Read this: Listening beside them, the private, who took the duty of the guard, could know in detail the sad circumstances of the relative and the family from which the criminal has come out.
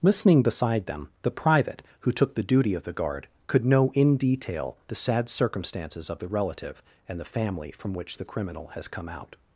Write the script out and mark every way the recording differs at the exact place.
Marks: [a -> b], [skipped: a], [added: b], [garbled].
Listening beside them, the private, who took the duty of the guard, could know in detail the sad circumstances of the relative and the family from which the criminal has come out.